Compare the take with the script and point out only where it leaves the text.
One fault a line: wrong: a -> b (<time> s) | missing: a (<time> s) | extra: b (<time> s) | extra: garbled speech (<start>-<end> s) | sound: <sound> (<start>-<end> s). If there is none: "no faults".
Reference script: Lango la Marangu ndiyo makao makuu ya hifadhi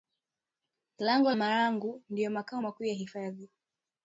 missing: la (1.3 s)